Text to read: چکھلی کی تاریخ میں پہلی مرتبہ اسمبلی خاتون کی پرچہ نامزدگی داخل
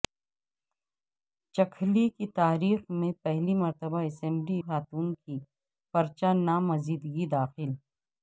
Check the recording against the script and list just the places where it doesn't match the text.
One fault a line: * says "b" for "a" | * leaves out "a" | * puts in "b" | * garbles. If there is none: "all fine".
all fine